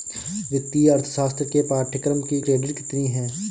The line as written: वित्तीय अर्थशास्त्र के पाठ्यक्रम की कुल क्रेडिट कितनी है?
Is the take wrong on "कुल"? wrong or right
wrong